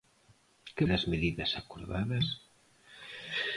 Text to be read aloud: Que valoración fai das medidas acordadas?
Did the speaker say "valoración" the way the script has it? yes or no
no